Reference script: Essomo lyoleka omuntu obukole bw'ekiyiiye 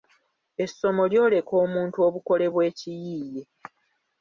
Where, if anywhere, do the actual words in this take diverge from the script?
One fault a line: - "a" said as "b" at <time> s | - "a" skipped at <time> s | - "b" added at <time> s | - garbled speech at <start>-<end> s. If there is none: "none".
none